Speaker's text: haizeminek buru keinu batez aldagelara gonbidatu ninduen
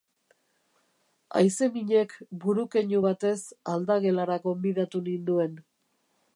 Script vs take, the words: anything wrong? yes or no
no